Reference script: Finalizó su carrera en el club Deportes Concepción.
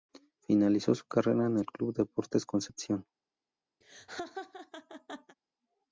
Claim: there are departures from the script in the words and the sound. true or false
true